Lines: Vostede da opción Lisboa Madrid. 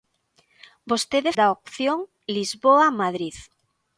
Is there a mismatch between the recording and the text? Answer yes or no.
no